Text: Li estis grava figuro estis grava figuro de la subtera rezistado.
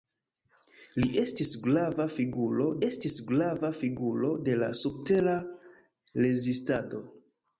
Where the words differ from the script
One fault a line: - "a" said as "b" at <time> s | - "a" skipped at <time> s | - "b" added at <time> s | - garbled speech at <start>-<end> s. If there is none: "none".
none